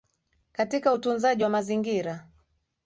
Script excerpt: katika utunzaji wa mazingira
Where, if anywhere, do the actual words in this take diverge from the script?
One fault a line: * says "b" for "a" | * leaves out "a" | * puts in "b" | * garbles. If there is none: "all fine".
all fine